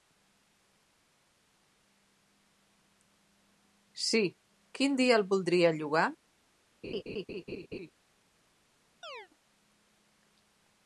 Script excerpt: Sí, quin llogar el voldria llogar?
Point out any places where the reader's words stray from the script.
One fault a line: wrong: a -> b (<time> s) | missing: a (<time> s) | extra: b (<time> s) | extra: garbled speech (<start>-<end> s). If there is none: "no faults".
wrong: llogar -> dia (5.0 s)